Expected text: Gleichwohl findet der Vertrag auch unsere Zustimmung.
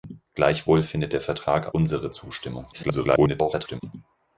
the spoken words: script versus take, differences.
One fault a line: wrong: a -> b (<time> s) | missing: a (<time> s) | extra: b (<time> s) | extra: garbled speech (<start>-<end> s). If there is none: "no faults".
missing: auch (1.7 s)
extra: garbled speech (2.7-3.8 s)